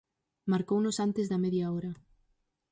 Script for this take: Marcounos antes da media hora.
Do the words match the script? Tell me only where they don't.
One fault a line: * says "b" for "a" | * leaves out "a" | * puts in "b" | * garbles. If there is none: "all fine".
all fine